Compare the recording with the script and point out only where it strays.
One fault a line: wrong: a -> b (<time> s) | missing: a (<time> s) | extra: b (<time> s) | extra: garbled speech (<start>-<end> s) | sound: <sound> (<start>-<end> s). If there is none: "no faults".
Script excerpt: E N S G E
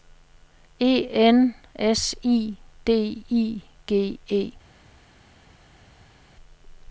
extra: I D I (2.2 s)